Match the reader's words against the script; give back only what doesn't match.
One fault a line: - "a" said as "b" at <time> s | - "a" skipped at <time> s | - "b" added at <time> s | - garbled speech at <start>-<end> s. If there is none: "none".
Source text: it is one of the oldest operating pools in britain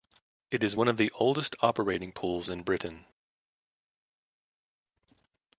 none